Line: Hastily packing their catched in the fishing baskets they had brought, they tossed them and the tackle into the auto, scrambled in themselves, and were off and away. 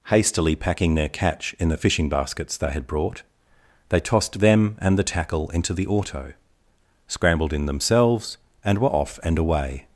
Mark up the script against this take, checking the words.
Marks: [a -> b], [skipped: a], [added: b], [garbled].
Hastily packing their [catched -> catch] in the fishing baskets they had brought, they tossed them and the tackle into the auto, scrambled in themselves, and were off and away.